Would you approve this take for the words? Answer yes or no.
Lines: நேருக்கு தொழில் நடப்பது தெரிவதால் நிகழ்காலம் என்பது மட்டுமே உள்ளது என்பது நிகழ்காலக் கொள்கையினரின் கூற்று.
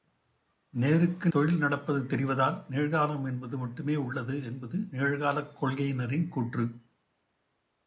yes